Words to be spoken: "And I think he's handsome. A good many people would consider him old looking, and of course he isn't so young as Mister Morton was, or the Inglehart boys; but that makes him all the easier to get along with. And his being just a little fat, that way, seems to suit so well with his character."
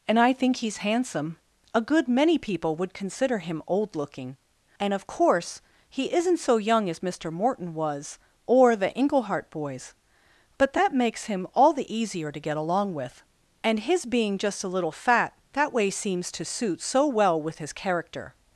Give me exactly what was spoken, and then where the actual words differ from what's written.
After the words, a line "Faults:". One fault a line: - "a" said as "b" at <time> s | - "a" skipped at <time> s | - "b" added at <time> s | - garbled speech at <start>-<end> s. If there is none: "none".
"And I think he's handsome. A good many people would consider him old looking, and of course he isn't so young as Mister Morton was, or the Inglehart boys; but that makes him all the easier to get along with. And his being just a little fat, that way, seems to suit so well with his character."
Faults:
none